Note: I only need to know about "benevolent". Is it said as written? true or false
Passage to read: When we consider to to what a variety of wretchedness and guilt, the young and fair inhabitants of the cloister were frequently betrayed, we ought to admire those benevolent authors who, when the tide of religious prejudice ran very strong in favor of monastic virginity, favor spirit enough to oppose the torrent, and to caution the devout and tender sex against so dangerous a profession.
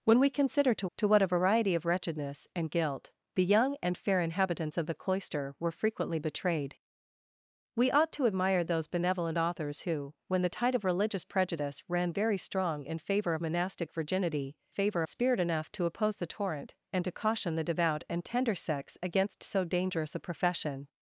true